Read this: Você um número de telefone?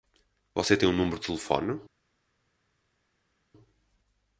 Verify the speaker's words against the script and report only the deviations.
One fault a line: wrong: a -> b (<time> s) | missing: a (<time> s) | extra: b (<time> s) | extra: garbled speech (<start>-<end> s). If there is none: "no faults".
extra: tem (0.8 s)